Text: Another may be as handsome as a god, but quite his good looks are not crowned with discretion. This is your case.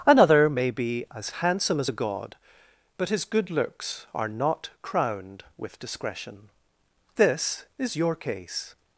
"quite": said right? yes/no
no